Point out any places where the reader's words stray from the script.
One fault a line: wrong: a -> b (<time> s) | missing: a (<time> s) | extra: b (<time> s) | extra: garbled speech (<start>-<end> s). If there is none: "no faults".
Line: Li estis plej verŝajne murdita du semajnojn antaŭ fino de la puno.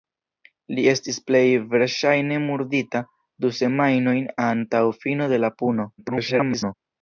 extra: garbled speech (6.0-6.7 s)